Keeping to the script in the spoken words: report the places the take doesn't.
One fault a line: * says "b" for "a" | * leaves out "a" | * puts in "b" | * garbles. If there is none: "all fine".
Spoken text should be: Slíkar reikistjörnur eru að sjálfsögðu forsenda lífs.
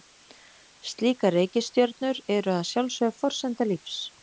all fine